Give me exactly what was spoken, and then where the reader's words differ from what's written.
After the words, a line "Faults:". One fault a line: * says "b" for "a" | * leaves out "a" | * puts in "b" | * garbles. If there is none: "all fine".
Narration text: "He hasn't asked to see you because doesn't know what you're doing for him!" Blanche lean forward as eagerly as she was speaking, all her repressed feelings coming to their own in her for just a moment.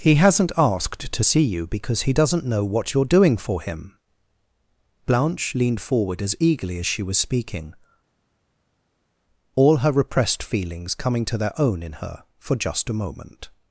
"He hasn't asked to see you because he doesn't know what you're doing for him!" Blanche leaned forward as eagerly as she was speaking, all her repressed feelings coming to their own in her for just a moment.
Faults:
* puts in "he"
* says "leaned" for "lean"